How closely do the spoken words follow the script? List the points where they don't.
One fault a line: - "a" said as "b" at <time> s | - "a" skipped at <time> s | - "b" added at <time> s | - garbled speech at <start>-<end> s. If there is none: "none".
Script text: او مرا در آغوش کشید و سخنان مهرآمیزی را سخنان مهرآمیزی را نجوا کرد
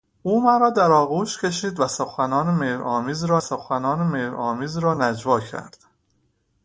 none